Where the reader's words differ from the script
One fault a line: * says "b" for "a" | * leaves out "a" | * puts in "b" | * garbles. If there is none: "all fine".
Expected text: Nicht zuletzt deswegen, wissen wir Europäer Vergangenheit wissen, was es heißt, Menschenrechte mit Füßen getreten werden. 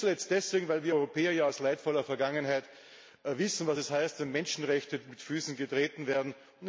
* says "weil" for "wissen"
* puts in "ja aus leidvoller"
* puts in "wenn"